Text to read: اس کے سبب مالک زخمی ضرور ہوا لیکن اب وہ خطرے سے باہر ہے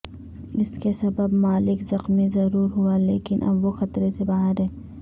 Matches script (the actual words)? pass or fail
pass